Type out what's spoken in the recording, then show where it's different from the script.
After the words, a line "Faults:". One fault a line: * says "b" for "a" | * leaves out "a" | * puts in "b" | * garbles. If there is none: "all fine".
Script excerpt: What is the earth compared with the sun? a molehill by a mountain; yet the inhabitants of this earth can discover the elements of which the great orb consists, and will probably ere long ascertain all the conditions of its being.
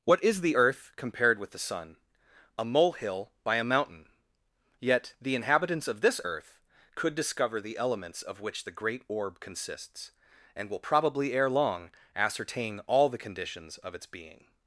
What is the earth compared with the sun? a molehill by a mountain; yet the inhabitants of this earth could discover the elements of which the great orb consists, and will probably ere long ascertain all the conditions of its being.
Faults:
* says "could" for "can"